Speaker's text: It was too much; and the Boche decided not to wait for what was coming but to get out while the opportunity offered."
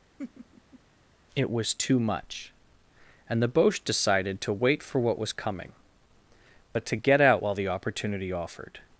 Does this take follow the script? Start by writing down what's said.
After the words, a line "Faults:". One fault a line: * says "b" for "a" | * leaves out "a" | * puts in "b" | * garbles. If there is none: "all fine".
It was too much; and the Boche decided to wait for what was coming but to get out while the opportunity offered."
Faults:
* leaves out "not"